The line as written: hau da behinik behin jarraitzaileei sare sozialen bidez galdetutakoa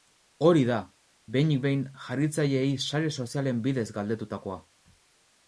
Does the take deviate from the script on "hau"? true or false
true